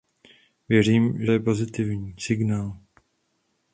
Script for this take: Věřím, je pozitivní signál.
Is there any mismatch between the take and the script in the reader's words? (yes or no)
no